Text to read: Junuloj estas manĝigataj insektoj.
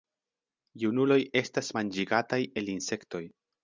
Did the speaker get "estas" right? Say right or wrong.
right